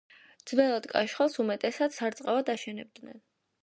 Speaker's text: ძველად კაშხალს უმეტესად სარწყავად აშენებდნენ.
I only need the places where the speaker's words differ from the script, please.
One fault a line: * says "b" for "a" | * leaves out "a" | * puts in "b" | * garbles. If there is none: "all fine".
all fine